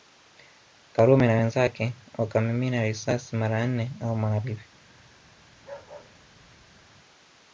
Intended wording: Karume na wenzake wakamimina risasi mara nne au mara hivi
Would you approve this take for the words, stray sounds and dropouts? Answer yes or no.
no